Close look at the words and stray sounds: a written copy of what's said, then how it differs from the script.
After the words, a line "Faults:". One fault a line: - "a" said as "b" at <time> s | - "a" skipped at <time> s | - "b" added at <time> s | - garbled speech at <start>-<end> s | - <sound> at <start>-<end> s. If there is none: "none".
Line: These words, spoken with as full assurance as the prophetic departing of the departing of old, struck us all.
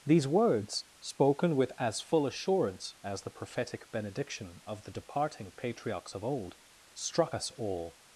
These words, spoken with as full assurance as the prophetic benediction of the departing patriarchs of old, struck us all.
Faults:
- "departing" said as "benediction" at 3.9 s
- "patriarchs" added at 5.5 s